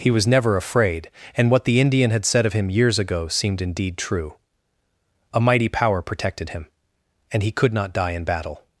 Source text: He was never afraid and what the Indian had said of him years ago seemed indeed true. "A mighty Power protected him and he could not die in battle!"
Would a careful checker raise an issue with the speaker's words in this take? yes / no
no